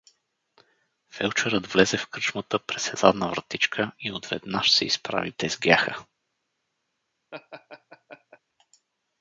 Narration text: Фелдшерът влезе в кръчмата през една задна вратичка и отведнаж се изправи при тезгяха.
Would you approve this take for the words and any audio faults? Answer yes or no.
no